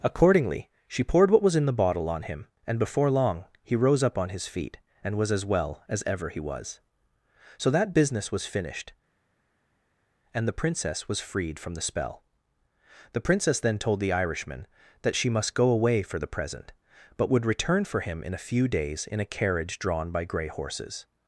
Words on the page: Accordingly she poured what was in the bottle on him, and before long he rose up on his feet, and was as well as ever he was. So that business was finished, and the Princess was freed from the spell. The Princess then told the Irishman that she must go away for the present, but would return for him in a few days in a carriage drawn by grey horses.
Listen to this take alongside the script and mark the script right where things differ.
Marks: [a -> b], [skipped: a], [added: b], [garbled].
Accordingly she poured what was in the bottle on him, and before long he rose up on his feet, and was as well as ever he was. So that business was finished, and the Princess was freed from the spell. The Princess then told the Irishman that she must go away for the present, but would return for him in a few days in a carriage drawn by grey horses.